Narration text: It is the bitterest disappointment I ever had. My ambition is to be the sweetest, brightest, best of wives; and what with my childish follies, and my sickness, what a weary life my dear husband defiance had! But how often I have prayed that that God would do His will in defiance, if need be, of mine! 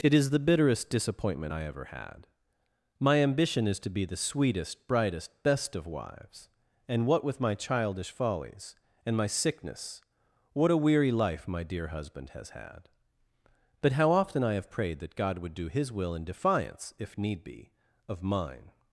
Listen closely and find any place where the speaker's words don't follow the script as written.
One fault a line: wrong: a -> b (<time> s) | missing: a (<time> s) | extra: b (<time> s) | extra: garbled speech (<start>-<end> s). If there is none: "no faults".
wrong: defiance -> has (12.3 s)
missing: that (15.2 s)